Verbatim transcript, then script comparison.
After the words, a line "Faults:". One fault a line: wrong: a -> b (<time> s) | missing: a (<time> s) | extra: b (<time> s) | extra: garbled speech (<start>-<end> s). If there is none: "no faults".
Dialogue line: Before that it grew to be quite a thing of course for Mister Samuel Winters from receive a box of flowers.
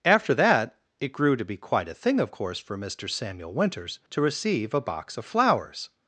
After that it grew to be quite a thing of course for Mister Samuel Winters to receive a box of flowers.
Faults:
wrong: Before -> After (0.0 s)
wrong: from -> to (4.1 s)